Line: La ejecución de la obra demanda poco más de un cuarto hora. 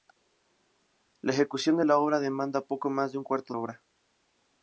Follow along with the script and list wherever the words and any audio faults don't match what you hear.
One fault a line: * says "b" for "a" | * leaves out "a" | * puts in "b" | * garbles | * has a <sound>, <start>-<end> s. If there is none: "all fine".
all fine